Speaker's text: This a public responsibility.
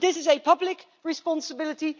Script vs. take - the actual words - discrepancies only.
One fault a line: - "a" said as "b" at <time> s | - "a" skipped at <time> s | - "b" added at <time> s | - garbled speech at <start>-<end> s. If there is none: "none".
- "is" added at 0.1 s